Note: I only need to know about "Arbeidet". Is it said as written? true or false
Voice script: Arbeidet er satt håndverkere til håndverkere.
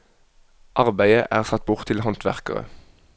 true